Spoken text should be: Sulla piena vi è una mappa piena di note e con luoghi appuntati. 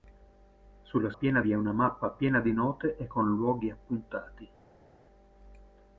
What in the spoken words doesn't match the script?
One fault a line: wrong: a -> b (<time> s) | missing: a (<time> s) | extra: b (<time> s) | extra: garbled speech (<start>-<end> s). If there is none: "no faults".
no faults